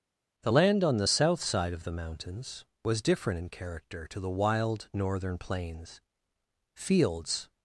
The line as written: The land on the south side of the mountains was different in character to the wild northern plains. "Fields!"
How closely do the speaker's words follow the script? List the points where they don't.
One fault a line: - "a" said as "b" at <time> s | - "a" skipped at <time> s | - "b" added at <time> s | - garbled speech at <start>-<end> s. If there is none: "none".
none